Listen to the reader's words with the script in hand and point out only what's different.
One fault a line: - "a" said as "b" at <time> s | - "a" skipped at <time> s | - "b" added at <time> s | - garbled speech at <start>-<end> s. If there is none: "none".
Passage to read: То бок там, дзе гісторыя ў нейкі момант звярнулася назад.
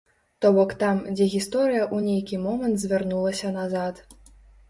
none